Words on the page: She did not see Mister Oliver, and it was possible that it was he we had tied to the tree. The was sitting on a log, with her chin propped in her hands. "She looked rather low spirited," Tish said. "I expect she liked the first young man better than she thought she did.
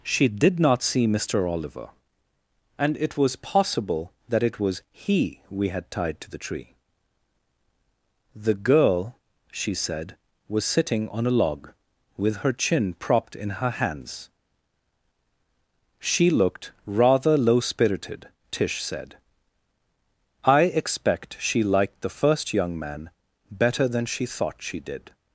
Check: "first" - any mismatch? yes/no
no